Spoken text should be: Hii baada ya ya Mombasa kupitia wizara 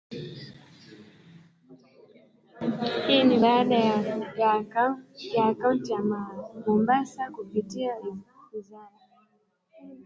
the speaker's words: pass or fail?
fail